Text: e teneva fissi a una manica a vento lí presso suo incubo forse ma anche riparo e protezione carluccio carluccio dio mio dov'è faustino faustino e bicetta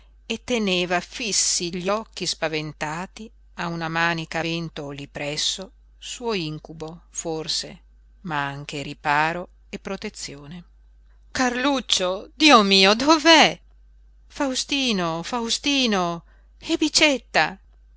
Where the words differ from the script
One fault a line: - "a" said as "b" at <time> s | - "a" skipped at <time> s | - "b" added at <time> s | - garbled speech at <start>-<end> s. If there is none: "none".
- "gli occhi spaventati" added at 1.8 s
- "carluccio" skipped at 12.3 s